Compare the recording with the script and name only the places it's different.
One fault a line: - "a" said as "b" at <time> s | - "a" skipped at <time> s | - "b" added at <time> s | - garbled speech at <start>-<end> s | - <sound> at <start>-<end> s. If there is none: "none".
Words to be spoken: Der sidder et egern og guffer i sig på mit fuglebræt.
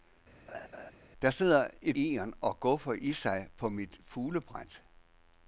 - laugh at 0.5-0.9 s